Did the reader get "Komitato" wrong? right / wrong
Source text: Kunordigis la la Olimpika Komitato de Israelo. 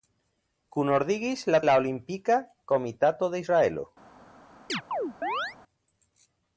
right